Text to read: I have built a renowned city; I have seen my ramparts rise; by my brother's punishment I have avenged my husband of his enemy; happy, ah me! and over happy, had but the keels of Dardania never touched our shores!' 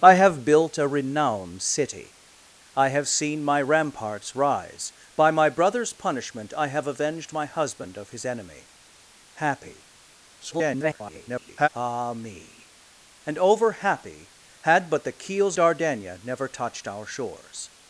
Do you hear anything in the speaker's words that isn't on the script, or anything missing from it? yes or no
yes